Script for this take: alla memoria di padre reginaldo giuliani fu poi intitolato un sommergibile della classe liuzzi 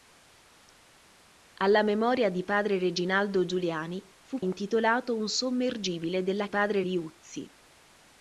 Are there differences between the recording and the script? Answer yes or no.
yes